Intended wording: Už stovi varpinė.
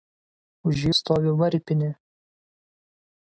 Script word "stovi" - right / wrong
right